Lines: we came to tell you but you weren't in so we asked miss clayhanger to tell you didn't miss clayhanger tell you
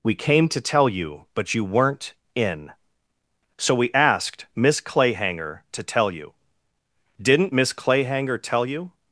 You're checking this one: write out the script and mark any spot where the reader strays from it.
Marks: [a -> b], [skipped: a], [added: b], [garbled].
we came to tell you but you weren't in so we asked miss clayhanger to tell you didn't miss clayhanger tell you